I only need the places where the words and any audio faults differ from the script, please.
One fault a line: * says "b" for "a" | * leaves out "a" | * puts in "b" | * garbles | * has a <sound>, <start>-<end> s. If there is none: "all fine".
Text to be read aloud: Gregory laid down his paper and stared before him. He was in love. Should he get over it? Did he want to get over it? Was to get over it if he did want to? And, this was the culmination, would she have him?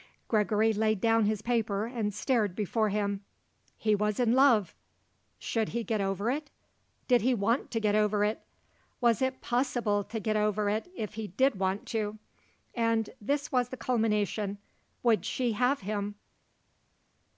* puts in "it possible"